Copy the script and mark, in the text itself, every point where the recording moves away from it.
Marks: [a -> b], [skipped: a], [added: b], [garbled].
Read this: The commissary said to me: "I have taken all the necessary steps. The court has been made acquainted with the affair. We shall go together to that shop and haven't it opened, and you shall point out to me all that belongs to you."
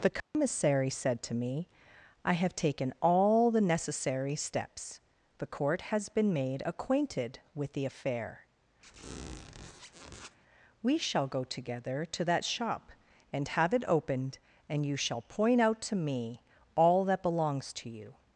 The commissary said to me: "I have taken all the necessary steps. The court has been made acquainted with the affair. We shall go together to that shop and [haven't -> have] it opened, and you shall point out to me all that belongs to you."